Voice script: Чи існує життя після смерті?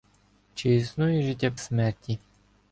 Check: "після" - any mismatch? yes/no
yes